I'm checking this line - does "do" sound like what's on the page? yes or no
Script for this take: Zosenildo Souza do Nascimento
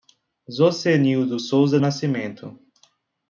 no